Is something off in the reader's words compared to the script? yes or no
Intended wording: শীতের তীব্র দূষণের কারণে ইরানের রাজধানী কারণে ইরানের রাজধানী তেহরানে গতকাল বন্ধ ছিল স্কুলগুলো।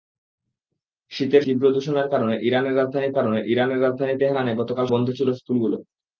no